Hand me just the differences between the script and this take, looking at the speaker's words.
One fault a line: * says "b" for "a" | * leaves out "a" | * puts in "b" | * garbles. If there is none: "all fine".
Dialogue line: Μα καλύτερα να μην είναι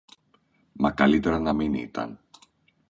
* says "ήταν" for "είναι"